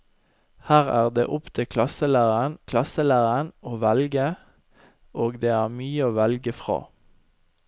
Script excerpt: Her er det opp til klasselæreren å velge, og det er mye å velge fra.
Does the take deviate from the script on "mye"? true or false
false